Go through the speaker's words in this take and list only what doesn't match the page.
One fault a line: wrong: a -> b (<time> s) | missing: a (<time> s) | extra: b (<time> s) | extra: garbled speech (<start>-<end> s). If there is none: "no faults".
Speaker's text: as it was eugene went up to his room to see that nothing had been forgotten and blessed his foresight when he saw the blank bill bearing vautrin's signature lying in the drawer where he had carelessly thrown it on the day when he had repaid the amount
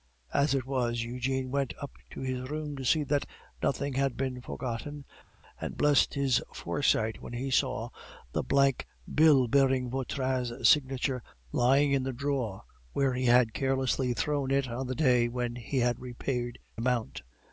missing: the (16.6 s)